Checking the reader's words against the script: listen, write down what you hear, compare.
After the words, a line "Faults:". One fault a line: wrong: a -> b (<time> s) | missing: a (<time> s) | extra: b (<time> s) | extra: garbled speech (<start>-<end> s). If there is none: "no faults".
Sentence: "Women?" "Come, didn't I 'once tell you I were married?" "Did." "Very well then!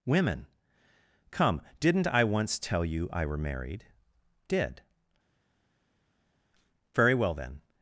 "Women?" "Come, didn't I 'once tell you I were married?" "Did." "Very well then!
Faults:
no faults